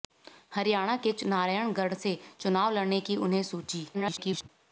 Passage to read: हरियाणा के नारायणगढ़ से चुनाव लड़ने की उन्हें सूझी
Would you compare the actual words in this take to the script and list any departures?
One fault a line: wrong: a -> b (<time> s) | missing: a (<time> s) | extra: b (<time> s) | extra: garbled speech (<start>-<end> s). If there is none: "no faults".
extra: garbled speech (3.9-4.5 s)